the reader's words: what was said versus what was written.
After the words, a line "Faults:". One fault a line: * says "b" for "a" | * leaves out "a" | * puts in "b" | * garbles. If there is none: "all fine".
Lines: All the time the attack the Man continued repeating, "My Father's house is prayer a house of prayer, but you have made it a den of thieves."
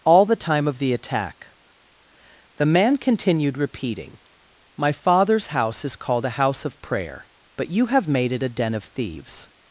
All the time of the attack the Man continued repeating, "My Father's house is called a house of prayer, but you have made it a den of thieves."
Faults:
* puts in "of"
* says "called" for "prayer"